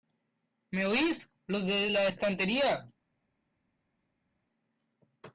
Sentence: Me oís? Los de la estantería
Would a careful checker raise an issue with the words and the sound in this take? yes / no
no